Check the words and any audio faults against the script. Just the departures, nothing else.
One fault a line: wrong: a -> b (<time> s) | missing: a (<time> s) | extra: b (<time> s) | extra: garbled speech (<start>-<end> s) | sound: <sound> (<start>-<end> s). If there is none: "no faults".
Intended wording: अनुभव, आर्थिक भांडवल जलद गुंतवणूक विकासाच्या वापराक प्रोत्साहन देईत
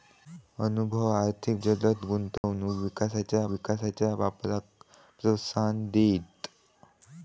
missing: भांडवल (1.6 s)
sound: dropout (2.4-2.4 s)
extra: विकासाच्या (3.5 s)